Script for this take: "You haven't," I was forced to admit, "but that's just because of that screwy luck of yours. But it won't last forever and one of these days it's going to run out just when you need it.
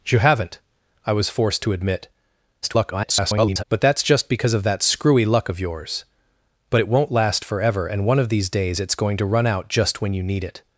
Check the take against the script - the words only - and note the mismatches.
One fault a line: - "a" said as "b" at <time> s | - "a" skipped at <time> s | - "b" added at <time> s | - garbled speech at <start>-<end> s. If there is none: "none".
- garbled speech at 2.6-3.6 s